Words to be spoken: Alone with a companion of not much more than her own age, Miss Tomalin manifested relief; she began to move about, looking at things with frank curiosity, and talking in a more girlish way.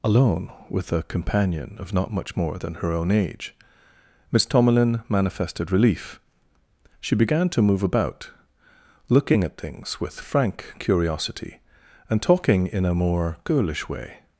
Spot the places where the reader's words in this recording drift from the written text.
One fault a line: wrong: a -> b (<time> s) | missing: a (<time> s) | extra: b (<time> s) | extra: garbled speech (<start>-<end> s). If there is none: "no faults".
no faults